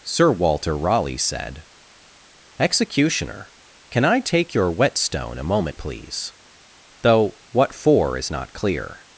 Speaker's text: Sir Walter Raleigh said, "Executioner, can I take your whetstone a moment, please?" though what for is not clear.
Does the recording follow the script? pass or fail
pass